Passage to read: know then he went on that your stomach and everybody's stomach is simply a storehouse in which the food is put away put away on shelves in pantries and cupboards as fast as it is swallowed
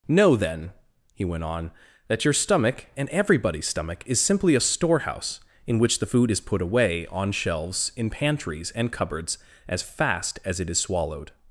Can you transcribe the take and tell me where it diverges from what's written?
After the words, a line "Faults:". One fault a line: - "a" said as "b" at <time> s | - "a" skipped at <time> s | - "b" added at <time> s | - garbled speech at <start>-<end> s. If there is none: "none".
know then he went on that your stomach and everybody's stomach is simply a storehouse in which the food is put away on shelves in pantries and cupboards as fast as it is swallowed
Faults:
- "put away" skipped at 7.1 s